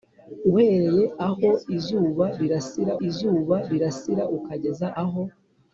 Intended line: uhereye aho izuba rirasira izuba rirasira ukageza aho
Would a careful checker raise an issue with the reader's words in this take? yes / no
no